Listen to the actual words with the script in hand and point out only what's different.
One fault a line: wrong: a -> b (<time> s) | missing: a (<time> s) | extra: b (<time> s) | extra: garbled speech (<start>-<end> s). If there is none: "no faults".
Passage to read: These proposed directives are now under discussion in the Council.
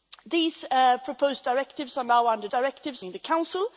wrong: discussion -> directives (2.5 s)